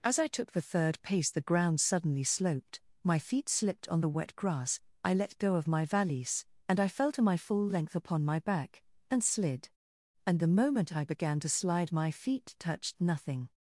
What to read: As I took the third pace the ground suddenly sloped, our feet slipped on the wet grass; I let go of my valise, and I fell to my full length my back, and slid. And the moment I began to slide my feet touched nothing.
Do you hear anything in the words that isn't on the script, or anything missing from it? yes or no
yes